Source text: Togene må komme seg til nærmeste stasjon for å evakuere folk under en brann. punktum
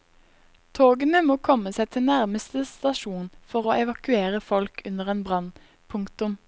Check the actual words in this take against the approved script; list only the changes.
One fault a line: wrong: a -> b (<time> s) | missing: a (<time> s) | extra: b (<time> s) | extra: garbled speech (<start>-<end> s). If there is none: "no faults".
no faults